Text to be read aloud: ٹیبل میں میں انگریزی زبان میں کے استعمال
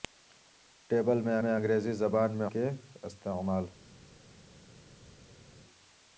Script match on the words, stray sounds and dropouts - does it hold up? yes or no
yes